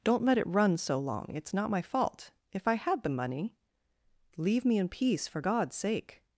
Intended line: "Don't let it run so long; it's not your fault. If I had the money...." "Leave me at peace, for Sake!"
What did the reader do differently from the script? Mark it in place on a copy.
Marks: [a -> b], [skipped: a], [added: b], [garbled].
"Don't let it run so long; it's not [your -> my] fault. If I had the money...." "Leave me [at -> in] peace, for [added: God's] Sake!"